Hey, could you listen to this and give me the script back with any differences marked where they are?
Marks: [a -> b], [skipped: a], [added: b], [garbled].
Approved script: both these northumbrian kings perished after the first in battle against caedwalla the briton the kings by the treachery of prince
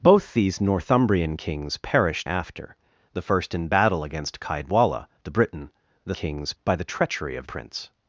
both these northumbrian kings perished after the first in battle against caedwalla the briton the kings by the treachery of prince